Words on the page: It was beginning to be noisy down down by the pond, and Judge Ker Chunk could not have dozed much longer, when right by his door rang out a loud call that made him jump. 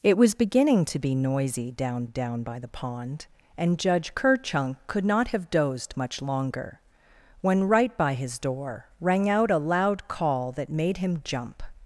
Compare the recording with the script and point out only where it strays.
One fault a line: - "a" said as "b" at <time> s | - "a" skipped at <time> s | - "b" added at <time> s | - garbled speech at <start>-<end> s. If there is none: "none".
none